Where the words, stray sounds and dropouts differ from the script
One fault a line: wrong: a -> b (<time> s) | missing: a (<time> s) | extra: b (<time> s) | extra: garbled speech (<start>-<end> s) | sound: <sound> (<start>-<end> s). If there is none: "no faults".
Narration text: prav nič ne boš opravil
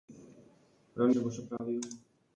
missing: nič (1.1 s)
sound: dropout (1.6-1.6 s)